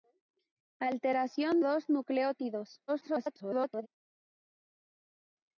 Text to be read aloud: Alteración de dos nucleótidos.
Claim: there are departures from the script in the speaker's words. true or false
true